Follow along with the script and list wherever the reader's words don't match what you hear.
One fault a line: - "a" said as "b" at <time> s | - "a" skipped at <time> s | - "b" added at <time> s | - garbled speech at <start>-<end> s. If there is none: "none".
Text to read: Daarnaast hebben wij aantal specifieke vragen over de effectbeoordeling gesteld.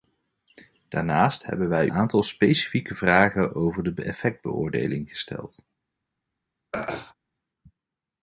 none